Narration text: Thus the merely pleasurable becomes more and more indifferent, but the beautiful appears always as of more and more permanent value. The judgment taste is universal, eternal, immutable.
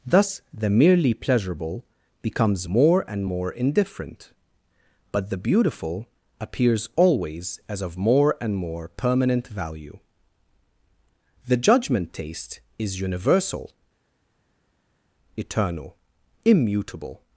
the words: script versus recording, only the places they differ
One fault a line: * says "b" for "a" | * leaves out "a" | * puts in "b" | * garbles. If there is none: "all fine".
all fine